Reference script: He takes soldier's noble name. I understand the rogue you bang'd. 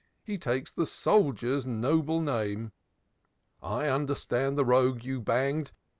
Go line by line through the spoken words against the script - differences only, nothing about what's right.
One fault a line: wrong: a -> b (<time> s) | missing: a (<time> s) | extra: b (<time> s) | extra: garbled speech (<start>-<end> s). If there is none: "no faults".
extra: the (0.7 s)